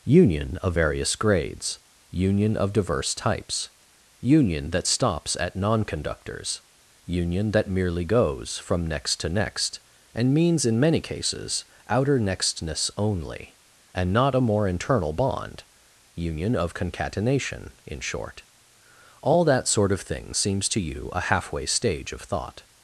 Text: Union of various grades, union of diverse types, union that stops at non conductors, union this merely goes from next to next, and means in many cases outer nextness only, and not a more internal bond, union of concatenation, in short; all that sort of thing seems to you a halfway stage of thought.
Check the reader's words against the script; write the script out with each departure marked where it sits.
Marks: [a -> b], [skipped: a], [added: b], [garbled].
Union of various grades, union of diverse types, union that stops at non conductors, union [this -> that] merely goes from next to next, and means in many cases outer nextness only, and not a more internal bond, union of concatenation, in short; all that sort of thing seems to you a halfway stage of thought.